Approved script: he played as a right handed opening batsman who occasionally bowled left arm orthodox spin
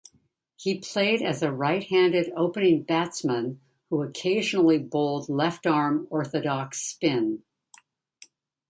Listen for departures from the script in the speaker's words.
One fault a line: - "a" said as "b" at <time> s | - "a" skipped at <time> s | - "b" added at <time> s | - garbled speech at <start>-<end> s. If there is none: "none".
none